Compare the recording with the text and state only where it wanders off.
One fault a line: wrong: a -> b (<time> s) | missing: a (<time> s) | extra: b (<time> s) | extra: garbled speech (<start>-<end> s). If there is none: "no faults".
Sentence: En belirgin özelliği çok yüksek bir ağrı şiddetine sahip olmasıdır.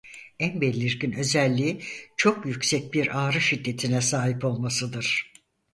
no faults